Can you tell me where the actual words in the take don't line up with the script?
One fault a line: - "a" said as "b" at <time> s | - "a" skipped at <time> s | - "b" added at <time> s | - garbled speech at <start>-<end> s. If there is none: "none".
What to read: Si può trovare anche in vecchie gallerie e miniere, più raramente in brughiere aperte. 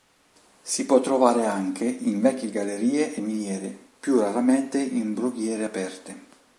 none